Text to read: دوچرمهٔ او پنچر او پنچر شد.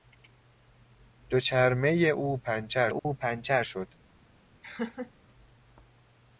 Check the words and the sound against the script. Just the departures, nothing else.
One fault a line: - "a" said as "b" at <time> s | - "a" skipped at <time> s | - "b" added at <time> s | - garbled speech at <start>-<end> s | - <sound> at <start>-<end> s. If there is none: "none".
- dropout at 3.0-3.0 s
- laugh at 4.6-5.1 s